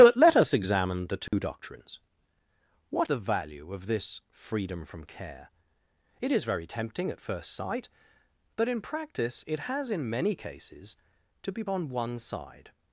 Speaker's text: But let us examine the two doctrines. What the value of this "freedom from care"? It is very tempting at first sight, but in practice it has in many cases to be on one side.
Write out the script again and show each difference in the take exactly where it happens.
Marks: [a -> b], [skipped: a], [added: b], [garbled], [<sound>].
But let us examine the two [dropout] doctrines. What the value of this "freedom from care"? It is very tempting at first sight, but in practice it has in many cases to be on one side.